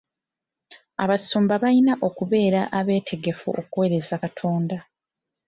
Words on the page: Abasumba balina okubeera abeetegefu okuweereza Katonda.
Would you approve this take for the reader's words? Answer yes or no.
yes